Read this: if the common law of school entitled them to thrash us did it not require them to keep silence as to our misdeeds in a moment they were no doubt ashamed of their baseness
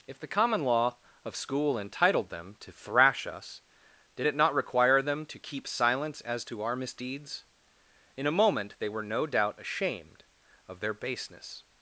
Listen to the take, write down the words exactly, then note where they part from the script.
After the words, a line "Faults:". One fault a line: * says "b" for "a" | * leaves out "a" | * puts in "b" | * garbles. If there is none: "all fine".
if the common law of school entitled them to thrash us did it not require them to keep silence as to our misdeeds in a moment they were no doubt ashamed of their baseness
Faults:
all fine